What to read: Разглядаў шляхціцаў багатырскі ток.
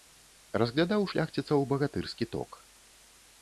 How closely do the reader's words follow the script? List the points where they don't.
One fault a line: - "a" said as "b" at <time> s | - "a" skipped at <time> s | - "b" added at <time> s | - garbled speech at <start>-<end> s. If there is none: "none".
none